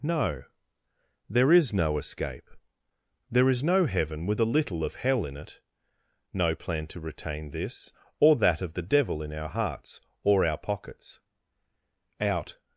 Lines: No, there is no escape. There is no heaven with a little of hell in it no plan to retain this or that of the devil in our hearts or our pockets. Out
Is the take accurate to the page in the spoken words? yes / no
yes